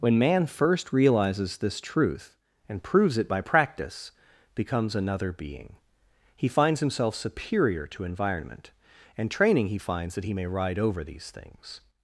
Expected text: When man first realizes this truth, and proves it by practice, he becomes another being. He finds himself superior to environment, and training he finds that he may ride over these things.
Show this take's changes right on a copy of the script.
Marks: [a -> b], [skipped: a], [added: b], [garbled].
When man first realizes this truth, and proves it by practice, [skipped: he] becomes another being. He finds himself superior to environment, and training he finds that he may ride over these things.